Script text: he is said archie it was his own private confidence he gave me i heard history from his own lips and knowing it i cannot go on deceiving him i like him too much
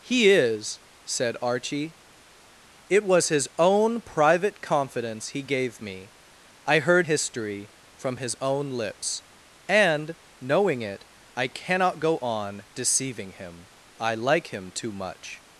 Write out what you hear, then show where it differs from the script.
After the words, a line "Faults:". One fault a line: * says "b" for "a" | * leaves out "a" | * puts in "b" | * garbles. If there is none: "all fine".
he is said archie it was his own private confidence he gave me i heard history from his own lips and knowing it i cannot go on deceiving him i like him too much
Faults:
all fine